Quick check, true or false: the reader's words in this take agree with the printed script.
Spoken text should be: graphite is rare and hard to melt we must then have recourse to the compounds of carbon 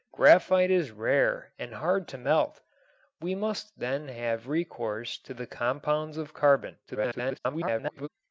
false